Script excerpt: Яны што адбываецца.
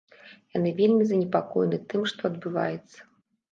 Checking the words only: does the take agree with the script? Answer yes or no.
no